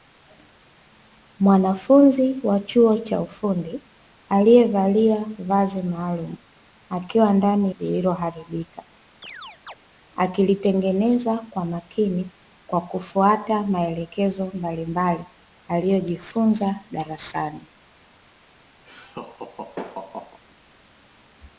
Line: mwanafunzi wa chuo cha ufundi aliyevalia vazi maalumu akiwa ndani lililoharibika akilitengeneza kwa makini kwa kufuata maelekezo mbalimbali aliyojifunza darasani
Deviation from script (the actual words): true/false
false